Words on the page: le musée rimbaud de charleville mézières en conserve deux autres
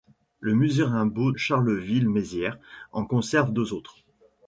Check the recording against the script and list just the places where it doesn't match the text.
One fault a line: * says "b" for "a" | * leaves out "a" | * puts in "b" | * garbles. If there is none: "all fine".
* leaves out "de"